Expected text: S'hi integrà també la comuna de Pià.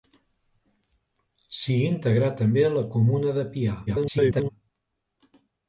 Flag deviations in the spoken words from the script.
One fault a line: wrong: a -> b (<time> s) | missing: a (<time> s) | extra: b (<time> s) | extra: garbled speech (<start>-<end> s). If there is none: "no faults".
extra: garbled speech (3.9-4.5 s)